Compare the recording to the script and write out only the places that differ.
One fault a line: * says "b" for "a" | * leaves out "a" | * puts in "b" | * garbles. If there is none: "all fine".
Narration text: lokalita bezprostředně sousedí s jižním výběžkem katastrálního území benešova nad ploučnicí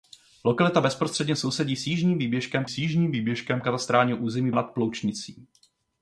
* puts in "s jižním výběžkem"
* leaves out "benešova"